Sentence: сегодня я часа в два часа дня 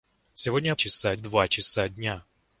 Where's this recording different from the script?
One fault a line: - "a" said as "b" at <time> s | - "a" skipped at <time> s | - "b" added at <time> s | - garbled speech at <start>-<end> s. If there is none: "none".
none